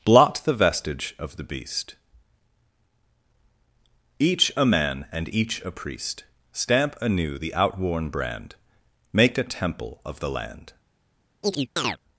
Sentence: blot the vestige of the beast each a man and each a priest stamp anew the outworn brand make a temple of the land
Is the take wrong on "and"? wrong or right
right